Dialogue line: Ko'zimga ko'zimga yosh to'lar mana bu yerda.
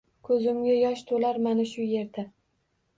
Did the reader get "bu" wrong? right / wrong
wrong